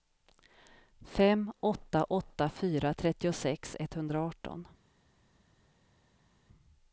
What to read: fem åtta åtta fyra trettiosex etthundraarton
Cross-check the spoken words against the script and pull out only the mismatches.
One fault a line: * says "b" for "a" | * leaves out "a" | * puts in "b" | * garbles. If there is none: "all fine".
all fine